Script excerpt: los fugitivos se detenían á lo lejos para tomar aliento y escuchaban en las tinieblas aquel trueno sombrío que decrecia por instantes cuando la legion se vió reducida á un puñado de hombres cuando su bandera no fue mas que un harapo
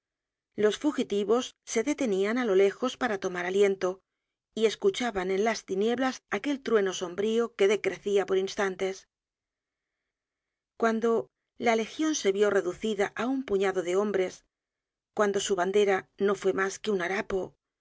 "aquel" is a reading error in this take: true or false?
false